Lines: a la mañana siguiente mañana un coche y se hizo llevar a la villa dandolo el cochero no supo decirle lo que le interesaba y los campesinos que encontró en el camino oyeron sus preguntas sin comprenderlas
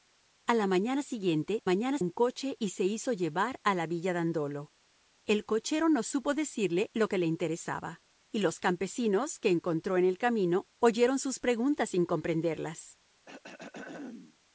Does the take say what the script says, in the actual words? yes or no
yes